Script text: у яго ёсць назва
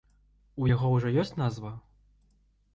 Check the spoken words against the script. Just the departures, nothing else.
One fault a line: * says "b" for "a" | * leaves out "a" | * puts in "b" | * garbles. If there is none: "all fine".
* puts in "ўжо"